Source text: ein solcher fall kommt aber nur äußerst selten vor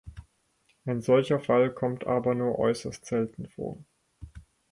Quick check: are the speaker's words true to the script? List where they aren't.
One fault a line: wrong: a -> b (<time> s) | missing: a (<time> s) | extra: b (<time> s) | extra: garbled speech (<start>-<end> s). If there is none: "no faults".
no faults